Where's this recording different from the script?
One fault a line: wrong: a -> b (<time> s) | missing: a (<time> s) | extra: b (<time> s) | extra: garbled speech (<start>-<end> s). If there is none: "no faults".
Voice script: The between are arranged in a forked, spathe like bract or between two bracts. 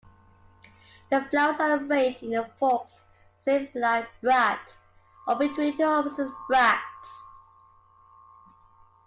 wrong: between -> flowers (1.3 s)
extra: opposite (5.8 s)